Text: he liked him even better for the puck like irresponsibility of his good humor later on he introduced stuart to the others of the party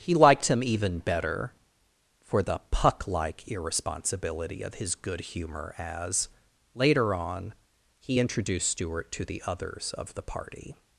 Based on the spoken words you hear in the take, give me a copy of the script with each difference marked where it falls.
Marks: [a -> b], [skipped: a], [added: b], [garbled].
he liked him even better for the puck like irresponsibility of his good humor [added: as] later on he introduced stuart to the others of the party